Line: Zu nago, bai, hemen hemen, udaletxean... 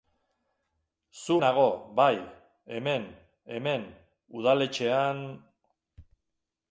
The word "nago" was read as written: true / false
true